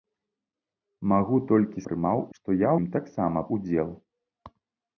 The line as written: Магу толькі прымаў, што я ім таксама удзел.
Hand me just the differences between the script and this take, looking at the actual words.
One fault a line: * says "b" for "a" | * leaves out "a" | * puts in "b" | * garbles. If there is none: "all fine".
all fine